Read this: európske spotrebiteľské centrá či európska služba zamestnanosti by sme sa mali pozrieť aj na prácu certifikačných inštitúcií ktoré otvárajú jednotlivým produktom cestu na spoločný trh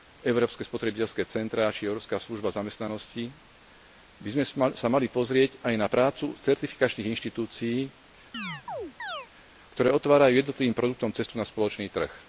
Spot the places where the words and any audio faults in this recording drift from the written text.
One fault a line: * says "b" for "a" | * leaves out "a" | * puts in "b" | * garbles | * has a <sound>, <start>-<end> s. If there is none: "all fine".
* has a chirp, 8.3-9.3 s